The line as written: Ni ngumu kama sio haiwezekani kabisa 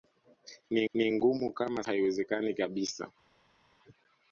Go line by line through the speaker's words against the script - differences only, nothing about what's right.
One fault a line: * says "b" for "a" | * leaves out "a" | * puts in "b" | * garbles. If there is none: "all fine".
* puts in "ni"
* leaves out "sio"